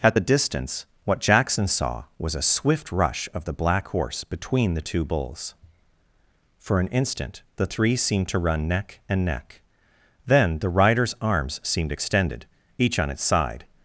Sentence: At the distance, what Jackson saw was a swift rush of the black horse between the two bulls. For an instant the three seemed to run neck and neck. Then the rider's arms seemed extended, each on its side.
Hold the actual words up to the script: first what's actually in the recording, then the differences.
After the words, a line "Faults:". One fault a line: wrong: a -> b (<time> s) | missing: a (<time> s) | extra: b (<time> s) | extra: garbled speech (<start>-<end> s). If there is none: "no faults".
At the distance, what Jackson saw was a swift rush of the black horse between the two bulls. For an instant the three seemed to run neck and neck. Then the rider's arms seemed extended, each on its side.
Faults:
no faults